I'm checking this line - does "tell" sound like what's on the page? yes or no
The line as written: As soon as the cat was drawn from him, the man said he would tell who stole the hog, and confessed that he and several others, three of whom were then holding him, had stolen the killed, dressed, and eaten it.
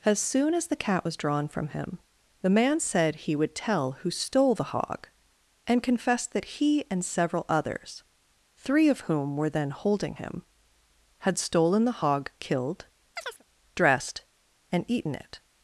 yes